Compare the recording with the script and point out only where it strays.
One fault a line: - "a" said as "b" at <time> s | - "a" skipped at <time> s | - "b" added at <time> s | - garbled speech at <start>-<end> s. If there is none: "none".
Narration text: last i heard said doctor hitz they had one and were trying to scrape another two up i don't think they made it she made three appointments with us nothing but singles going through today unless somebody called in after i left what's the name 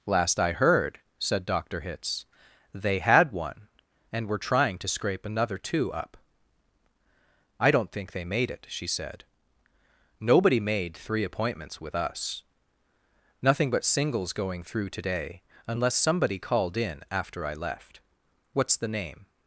- "said nobody" added at 8.9 s